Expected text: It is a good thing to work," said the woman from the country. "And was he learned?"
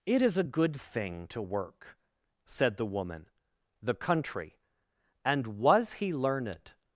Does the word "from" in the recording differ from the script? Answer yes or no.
yes